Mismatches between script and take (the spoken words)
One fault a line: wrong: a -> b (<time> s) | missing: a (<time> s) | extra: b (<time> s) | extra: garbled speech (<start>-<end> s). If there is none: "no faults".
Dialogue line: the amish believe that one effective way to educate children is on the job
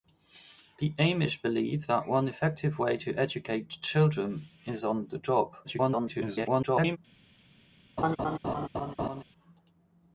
extra: garbled speech (5.6-7.0 s)